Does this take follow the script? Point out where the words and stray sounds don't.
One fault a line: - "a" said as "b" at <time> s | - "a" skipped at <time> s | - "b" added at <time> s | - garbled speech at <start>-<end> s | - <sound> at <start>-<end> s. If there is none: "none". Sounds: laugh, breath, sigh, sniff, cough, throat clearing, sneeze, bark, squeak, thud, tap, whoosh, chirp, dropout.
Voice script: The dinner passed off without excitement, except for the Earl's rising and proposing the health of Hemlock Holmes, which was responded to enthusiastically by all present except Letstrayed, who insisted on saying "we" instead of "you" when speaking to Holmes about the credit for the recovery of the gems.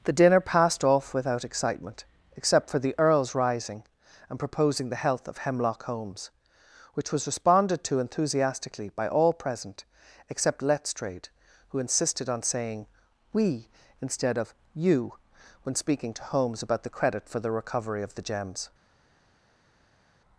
none